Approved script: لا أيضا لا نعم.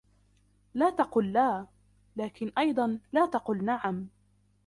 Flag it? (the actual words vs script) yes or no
yes